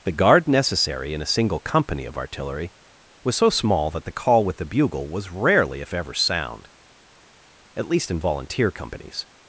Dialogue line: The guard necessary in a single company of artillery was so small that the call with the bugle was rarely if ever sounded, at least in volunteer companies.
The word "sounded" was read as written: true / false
false